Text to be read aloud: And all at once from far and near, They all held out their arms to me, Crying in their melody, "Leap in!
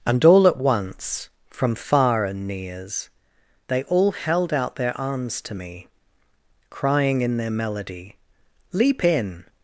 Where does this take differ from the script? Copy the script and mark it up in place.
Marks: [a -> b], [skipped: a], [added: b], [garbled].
And all at once from far and [near, -> nears] They all held out their arms to me, Crying in their melody, "Leap in!